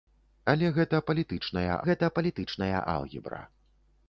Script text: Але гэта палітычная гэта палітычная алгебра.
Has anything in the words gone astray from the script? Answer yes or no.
no